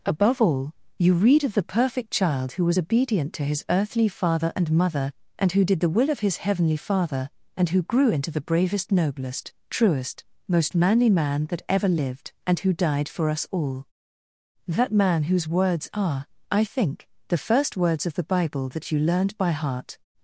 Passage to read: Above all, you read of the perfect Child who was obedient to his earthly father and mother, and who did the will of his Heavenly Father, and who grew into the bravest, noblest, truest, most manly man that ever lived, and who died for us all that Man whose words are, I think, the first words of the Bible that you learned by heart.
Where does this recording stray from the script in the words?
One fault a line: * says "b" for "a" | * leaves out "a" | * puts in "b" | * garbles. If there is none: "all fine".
all fine